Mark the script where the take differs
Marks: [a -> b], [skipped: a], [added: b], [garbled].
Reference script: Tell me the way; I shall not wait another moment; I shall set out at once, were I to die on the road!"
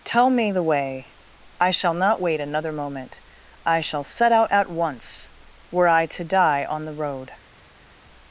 Tell me the way; I shall not wait another moment; I shall set out at once, were I to die on the road!"